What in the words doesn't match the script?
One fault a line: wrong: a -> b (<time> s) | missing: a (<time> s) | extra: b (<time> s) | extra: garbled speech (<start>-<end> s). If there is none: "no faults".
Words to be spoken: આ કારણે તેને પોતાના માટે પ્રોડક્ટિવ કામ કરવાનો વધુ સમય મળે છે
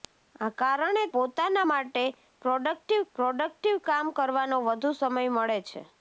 missing: તેને (1.0 s)
extra: પ્રોડક્ટિવ (3.2 s)